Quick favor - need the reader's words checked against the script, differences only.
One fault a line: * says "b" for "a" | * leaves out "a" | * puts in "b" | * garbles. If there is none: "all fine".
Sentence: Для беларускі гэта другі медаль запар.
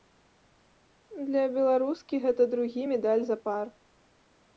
all fine